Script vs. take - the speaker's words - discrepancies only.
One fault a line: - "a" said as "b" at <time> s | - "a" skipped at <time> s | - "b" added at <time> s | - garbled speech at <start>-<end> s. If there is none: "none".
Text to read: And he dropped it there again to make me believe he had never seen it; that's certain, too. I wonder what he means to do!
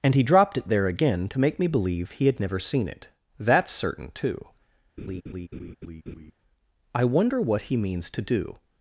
none